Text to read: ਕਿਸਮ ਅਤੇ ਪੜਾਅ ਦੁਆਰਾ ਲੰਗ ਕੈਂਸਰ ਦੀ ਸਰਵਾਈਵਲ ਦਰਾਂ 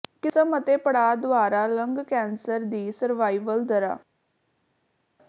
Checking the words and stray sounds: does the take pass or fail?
pass